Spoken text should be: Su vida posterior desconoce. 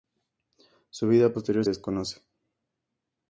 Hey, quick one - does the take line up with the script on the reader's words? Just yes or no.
yes